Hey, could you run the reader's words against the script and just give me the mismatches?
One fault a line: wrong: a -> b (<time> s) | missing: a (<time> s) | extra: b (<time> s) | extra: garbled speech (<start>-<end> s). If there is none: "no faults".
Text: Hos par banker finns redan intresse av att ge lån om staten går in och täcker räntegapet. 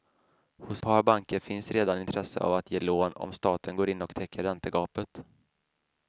no faults